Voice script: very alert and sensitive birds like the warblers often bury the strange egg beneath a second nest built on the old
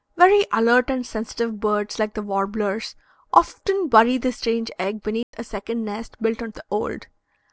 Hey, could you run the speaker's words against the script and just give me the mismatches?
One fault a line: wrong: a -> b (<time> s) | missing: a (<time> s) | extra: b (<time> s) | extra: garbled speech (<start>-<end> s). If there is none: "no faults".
no faults